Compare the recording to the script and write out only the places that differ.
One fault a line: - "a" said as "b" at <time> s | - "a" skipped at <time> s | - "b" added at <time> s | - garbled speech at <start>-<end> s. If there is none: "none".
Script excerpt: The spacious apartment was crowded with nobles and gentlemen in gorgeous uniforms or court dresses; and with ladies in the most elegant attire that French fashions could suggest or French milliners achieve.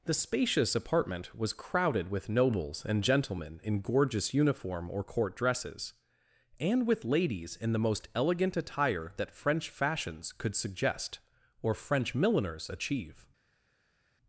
- "uniforms" said as "uniform" at 4.3 s